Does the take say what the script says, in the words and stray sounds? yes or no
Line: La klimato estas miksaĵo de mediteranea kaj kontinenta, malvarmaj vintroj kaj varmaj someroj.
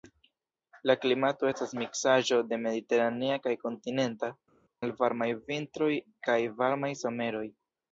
yes